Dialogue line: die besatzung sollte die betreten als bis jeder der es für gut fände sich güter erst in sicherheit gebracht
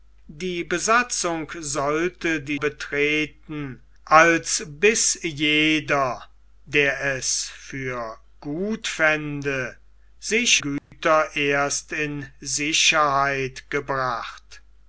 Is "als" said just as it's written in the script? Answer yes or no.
yes